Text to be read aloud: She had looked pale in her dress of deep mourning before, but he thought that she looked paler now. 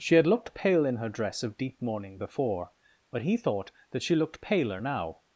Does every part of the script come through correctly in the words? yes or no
yes